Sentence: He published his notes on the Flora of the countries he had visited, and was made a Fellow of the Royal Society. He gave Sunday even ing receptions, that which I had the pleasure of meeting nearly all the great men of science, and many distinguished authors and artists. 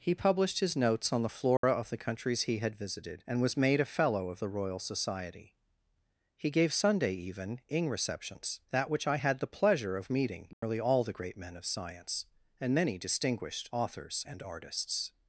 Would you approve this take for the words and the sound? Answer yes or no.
no